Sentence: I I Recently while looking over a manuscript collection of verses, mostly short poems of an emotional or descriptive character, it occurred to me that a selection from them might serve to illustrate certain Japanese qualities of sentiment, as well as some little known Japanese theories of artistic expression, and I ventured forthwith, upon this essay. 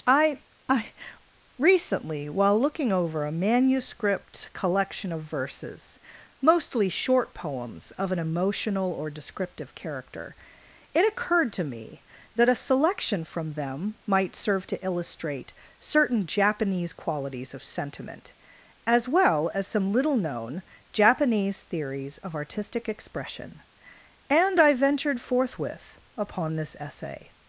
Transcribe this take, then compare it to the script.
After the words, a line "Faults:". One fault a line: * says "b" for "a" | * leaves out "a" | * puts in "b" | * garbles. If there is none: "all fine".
I I Recently while looking over a manuscript collection of verses, mostly short poems of an emotional or descriptive character, it occurred to me that a selection from them might serve to illustrate certain Japanese qualities of sentiment, as well as some little known Japanese theories of artistic expression, and I ventured forthwith, upon this essay.
Faults:
all fine